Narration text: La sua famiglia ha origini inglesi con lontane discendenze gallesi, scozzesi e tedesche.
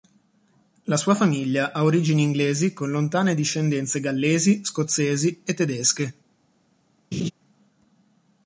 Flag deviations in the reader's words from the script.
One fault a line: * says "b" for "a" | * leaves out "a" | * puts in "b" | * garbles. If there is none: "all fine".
all fine